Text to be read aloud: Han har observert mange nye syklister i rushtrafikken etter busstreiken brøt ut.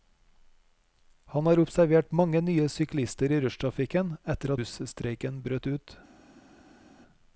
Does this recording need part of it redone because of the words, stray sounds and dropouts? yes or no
no